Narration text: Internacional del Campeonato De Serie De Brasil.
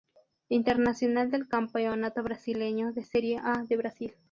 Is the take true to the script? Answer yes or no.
no